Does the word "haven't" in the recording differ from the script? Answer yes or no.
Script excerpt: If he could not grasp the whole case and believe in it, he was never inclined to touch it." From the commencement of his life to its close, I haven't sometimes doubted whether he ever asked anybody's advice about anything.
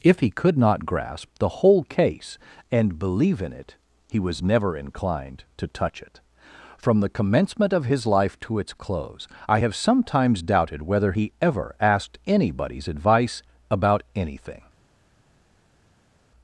yes